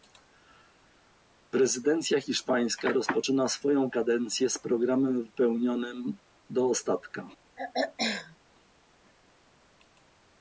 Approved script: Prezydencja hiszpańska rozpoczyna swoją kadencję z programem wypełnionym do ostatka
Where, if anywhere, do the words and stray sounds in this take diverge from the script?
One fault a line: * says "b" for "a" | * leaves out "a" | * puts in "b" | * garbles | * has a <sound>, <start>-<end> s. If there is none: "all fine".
* has a throat clearing, 7.6-8.4 s